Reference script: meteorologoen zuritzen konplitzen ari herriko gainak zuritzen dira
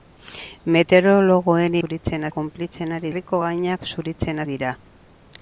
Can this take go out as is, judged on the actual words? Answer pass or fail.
pass